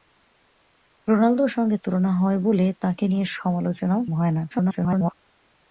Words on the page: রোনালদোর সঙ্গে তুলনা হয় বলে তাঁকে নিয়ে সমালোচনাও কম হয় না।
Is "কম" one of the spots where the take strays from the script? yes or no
yes